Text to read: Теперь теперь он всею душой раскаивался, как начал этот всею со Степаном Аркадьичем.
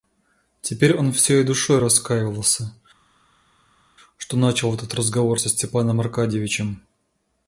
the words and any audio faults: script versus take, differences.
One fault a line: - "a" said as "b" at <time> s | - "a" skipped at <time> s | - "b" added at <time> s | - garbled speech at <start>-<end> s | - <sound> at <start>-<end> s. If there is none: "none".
- "теперь" skipped at 0.9 s
- "как" said as "что" at 4.2 s
- "всею" said as "разговор" at 4.9 s